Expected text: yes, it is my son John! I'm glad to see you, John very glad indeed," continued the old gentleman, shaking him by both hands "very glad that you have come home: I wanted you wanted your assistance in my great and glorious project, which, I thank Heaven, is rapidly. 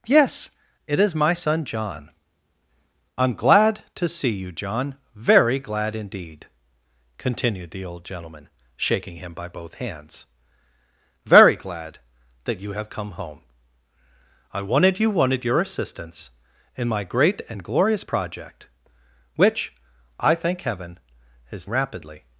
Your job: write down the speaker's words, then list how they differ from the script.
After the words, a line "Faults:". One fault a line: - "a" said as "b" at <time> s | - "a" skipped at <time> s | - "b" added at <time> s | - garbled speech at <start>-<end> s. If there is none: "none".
yes, it is my son John! I'm glad to see you, John very glad indeed," continued the old gentleman, shaking him by both hands "very glad that you have come home: I wanted you wanted your assistance in my great and glorious project, which, I thank Heaven, is rapidly.
Faults:
none